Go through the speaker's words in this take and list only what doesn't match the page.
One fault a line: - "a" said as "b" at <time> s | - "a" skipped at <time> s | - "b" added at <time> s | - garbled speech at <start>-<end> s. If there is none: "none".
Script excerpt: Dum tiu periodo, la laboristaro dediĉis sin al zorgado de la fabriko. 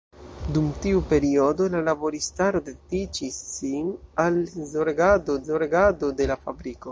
- "zorgado" added at 5.5 s